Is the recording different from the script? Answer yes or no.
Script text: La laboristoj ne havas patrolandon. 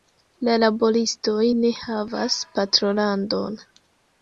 no